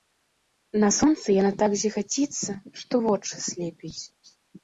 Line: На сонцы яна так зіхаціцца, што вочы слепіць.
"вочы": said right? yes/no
yes